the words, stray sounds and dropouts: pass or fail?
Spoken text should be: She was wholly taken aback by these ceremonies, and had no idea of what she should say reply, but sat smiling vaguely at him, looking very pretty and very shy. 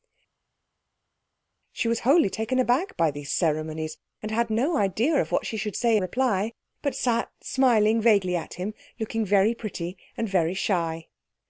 pass